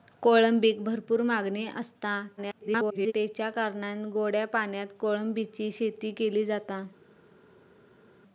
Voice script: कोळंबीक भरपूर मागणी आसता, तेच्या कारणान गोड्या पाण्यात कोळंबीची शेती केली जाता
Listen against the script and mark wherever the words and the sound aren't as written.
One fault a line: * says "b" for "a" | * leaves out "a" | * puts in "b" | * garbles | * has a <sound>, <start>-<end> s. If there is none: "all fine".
* garbles